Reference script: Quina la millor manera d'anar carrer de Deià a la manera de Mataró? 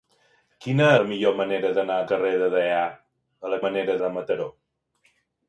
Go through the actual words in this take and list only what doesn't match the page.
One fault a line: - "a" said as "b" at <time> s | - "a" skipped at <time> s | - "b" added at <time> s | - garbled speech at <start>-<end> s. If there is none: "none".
none